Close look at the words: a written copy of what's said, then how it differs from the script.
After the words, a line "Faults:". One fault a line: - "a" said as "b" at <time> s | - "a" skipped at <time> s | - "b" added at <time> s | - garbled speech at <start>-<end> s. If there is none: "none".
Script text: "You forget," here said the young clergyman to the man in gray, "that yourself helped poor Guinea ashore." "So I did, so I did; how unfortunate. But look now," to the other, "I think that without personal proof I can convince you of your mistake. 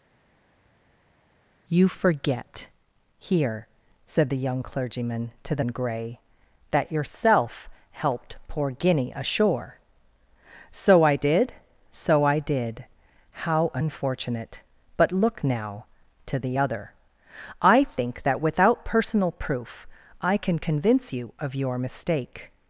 "You forget," here said the young clergyman to the in gray, "that yourself helped poor Guinea ashore." "So I did, so I did; how unfortunate. But look now," to the other, "I think that without personal proof I can convince you of your mistake.
Faults:
- "man" skipped at 5.7 s